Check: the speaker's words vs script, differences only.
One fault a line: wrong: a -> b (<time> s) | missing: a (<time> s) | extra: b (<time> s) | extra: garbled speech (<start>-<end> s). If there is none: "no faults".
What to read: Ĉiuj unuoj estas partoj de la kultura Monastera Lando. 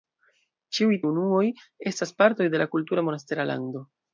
no faults